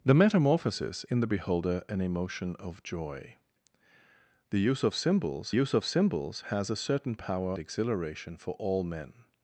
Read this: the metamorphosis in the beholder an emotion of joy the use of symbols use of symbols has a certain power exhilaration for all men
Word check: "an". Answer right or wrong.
right